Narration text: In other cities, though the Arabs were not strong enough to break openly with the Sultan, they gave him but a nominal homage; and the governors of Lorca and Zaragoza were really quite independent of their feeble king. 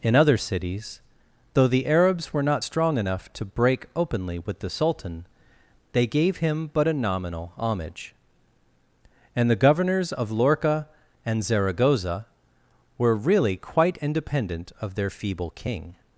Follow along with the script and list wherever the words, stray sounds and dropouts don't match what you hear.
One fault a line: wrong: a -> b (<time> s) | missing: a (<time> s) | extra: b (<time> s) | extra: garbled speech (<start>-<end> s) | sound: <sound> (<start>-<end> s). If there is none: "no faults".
no faults